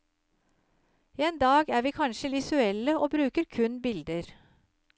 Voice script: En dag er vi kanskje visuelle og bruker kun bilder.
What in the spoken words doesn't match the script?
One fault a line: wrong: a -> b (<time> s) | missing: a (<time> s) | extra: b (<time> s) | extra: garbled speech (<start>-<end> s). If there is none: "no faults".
no faults